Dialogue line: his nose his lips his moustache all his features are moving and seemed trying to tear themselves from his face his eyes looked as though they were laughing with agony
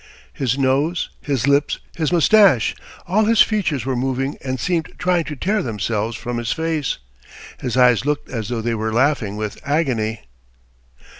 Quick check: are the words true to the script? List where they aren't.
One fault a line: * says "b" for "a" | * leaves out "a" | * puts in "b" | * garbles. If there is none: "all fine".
* says "were" for "are"